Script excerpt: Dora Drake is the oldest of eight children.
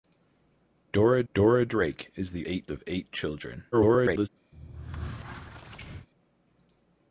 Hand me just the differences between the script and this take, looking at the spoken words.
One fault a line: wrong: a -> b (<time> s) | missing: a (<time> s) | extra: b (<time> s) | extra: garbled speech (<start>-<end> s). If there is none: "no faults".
extra: dora (1.3 s)
wrong: oldest -> eight (2.4 s)
extra: garbled speech (3.7-4.3 s)